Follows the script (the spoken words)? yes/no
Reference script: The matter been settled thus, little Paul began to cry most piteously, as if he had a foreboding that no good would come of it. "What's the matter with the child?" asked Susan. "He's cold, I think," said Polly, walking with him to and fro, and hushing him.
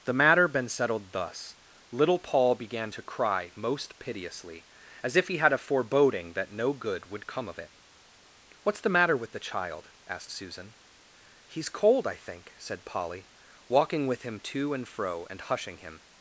yes